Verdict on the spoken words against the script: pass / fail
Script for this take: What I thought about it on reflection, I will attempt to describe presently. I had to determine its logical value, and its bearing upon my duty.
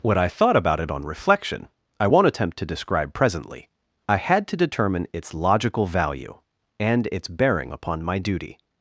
fail